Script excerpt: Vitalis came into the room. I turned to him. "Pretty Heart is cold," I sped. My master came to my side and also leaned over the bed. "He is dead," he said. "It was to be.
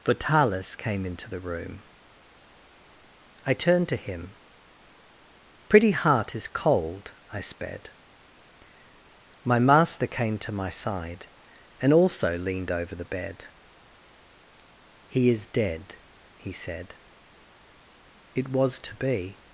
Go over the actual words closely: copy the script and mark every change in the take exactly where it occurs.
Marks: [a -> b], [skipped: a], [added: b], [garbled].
Vitalis came into the room. I turned to him. "Pretty Heart is cold," I sped. My master came to my side and also leaned over the bed. "He is dead," he said. "It was to be.